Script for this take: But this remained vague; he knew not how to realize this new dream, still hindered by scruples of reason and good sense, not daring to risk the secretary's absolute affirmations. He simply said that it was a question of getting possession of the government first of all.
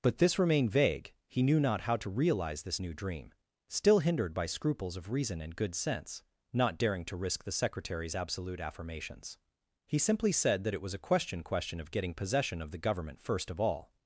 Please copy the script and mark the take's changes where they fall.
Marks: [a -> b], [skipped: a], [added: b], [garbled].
But this remained vague; he knew not how to realize this new dream, still hindered by scruples of reason and good sense, not daring to risk the secretary's absolute affirmations. He simply said that it was a question [added: question] of getting possession of the government first of all.